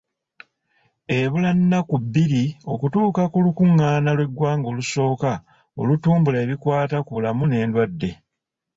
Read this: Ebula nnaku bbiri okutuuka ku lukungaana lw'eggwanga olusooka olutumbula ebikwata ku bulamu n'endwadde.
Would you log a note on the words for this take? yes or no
no